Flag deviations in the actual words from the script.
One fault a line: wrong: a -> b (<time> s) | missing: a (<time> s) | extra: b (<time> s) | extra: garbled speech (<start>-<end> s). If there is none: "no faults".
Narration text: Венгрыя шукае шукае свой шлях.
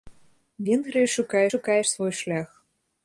no faults